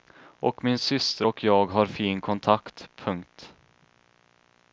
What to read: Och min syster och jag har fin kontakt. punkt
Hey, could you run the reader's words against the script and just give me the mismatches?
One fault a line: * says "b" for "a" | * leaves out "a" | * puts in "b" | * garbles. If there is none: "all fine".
all fine